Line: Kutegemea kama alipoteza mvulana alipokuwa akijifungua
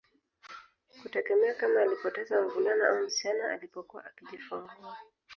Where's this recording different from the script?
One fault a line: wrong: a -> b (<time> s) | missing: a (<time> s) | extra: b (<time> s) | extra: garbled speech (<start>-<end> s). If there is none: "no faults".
extra: au msichana (2.9 s)